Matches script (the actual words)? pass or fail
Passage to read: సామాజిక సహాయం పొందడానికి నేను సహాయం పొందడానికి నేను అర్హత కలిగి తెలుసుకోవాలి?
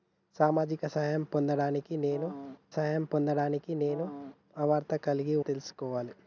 pass